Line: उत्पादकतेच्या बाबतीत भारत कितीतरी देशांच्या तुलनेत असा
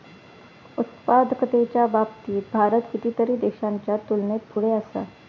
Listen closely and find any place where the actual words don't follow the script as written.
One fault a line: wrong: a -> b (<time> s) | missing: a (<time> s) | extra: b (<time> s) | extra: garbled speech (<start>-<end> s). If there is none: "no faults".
extra: पुढे (4.5 s)